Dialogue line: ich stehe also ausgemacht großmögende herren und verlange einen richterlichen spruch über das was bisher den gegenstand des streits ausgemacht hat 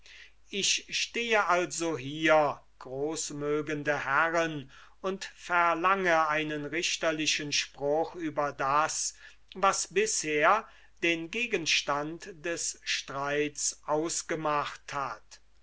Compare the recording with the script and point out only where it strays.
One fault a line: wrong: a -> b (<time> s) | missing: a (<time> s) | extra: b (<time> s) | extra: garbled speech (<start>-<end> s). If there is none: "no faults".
wrong: ausgemacht -> hier (1.9 s)